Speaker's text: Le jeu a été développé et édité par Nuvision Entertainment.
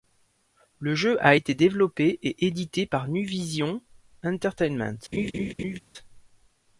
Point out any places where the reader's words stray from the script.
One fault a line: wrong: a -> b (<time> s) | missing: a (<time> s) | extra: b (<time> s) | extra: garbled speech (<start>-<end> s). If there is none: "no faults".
no faults